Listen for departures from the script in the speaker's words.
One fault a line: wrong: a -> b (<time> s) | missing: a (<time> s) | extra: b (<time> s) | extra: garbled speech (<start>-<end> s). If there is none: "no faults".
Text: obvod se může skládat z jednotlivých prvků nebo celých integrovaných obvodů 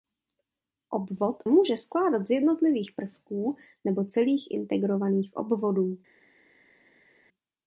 missing: se (1.4 s)